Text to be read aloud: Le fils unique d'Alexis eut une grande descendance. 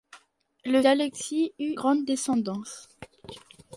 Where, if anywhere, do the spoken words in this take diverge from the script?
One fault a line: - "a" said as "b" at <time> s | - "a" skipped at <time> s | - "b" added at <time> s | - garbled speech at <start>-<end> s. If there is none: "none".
- "fils unique" skipped at 0.8 s
- "une" skipped at 1.7 s